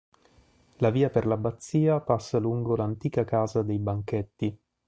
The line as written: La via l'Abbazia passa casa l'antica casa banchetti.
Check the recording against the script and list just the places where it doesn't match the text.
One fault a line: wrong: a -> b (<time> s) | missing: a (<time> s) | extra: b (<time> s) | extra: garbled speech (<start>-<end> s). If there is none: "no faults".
extra: per (1.1 s)
wrong: casa -> lungo (2.4 s)
extra: dei (3.6 s)